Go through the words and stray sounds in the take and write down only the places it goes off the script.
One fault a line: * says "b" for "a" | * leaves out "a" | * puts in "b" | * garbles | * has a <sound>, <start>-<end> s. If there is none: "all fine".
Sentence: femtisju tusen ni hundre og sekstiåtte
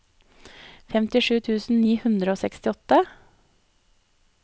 all fine